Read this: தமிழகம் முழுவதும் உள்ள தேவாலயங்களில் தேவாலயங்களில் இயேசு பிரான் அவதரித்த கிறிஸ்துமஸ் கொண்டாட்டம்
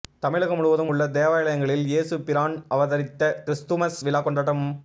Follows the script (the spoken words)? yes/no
no